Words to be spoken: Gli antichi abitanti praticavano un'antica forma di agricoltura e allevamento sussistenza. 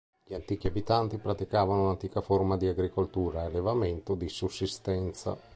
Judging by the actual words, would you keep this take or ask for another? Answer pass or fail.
fail